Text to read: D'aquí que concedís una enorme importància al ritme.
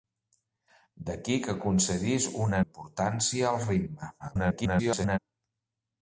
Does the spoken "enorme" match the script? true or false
false